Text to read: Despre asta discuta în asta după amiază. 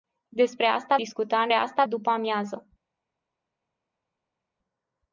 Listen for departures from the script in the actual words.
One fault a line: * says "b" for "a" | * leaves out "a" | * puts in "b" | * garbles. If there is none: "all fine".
all fine